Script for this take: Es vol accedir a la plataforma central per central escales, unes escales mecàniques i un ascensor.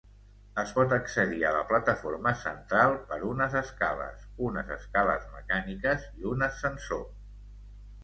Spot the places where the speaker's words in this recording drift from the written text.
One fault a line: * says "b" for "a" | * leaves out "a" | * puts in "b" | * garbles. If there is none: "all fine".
* says "pot" for "vol"
* says "unes" for "central"